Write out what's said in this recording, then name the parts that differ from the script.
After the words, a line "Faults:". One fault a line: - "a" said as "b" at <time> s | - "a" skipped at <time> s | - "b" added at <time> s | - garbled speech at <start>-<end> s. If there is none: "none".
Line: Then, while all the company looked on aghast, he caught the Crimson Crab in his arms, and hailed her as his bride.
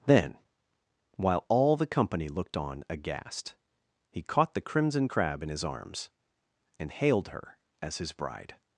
Then, while all the company looked on aghast, he caught the Crimson Crab in his arms, and hailed her as his bride.
Faults:
none